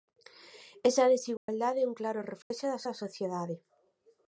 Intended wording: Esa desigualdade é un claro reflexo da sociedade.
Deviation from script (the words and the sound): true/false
true